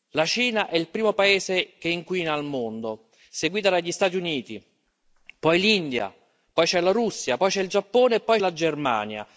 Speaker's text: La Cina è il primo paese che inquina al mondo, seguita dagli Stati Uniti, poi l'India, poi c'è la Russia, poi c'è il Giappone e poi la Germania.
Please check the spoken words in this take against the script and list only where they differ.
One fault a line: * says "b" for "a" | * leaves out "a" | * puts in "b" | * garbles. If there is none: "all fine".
all fine